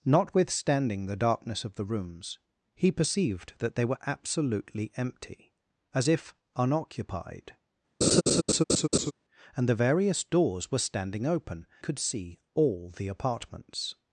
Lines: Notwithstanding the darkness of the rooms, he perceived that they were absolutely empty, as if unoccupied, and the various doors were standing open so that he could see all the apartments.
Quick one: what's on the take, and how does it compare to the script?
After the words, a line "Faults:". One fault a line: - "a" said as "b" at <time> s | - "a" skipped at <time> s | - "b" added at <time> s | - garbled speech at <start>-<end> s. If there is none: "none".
Notwithstanding the darkness of the rooms, he perceived that they were absolutely empty, as if unoccupied, and the various doors were standing open could see all the apartments.
Faults:
- "so that he" skipped at 11.7 s